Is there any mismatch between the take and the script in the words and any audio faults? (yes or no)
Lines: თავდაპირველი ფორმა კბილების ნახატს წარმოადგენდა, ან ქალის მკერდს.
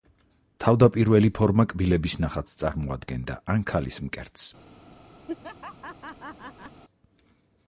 yes